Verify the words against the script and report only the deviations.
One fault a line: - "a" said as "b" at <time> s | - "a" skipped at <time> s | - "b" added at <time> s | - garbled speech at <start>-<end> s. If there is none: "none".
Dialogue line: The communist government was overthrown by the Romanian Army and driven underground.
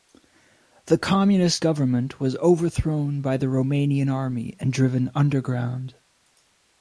none